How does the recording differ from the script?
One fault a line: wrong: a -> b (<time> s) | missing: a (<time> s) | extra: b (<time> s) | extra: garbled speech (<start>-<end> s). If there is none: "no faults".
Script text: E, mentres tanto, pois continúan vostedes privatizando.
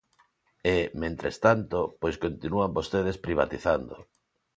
no faults